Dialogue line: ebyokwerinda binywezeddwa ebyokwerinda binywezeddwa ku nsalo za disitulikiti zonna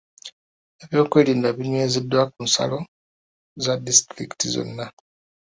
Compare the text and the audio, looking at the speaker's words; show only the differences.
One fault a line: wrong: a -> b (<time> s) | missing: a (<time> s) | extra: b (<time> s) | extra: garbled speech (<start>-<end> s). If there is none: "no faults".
missing: ebyokwerinda binywezeddwa (2.2 s)